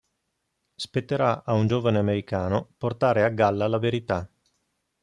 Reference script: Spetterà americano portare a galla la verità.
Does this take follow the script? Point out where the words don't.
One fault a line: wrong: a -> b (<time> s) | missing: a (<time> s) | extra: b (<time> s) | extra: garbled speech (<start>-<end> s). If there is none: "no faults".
extra: a un giovane (1.4 s)